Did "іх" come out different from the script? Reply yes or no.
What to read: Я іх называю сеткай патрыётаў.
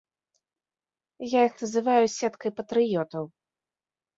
no